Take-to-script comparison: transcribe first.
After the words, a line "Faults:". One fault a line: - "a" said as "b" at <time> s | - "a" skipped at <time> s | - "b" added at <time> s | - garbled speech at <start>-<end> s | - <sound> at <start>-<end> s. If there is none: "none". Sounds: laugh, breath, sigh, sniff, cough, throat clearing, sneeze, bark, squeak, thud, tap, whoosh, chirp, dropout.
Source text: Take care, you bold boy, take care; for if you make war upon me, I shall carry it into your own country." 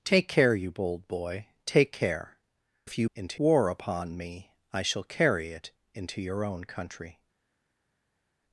Take care, you bold boy, take care; if you into war upon me, I shall carry it into your own country."
Faults:
- "for" skipped at 2.4 s
- "make" said as "into" at 3.1 s